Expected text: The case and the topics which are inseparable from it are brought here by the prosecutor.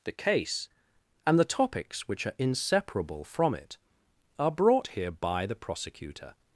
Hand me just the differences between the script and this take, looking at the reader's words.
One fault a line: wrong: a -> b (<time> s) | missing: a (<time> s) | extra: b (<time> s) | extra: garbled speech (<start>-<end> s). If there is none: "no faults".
no faults